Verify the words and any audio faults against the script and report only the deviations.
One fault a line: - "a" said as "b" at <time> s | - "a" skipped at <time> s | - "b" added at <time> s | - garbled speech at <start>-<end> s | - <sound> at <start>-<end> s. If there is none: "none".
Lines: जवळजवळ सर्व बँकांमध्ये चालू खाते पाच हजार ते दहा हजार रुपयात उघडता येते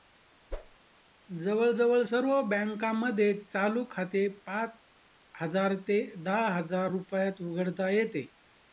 - whoosh at 0.5-0.8 s